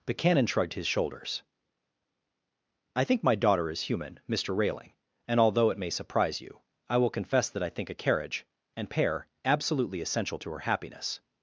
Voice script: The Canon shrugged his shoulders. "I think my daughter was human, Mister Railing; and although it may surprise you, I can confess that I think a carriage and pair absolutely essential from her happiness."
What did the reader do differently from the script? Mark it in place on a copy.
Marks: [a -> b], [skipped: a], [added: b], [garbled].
The Canon shrugged his shoulders. "I think my daughter [was -> is] human, Mister Railing; and although it may surprise you, I [can -> will] confess that I think a carriage and pair absolutely essential [from -> to] her happiness."